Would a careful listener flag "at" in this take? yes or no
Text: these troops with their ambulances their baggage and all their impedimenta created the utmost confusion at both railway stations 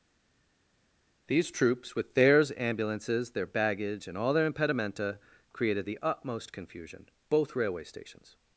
yes